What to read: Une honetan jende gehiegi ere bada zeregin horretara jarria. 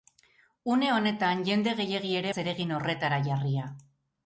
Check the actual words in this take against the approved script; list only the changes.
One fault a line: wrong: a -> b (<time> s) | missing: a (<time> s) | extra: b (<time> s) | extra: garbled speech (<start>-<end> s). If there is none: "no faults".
missing: bada (2.3 s)